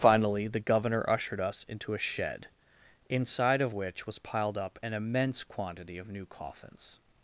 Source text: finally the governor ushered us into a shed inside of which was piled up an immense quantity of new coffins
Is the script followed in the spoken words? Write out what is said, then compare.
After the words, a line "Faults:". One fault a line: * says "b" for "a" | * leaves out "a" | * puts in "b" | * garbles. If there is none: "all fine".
finally the governor ushered us into a shed inside of which was piled up an immense quantity of new coffins
Faults:
all fine